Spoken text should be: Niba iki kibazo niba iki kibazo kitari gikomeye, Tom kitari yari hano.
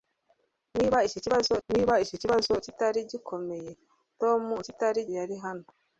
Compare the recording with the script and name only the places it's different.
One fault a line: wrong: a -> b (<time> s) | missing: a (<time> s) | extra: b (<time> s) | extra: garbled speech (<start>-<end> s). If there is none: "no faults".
no faults